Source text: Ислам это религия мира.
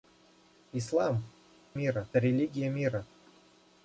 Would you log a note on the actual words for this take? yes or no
yes